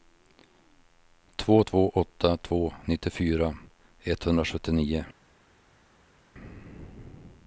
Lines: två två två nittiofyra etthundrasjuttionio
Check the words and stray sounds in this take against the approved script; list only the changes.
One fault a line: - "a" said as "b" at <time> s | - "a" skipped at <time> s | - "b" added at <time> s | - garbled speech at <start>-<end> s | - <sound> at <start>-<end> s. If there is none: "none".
- "åtta" added at 1.9 s